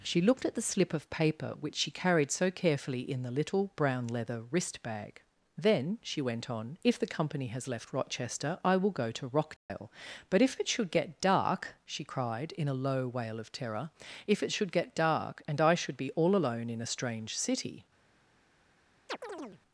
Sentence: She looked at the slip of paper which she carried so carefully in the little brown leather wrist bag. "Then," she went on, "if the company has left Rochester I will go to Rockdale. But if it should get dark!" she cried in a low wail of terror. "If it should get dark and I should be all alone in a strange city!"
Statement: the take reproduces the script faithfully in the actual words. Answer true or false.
true